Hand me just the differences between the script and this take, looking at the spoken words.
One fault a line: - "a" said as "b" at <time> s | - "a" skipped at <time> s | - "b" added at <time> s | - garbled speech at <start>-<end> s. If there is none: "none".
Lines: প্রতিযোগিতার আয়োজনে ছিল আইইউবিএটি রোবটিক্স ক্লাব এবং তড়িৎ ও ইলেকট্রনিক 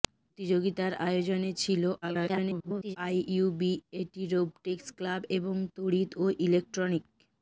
- garbled speech at 2.0-3.0 s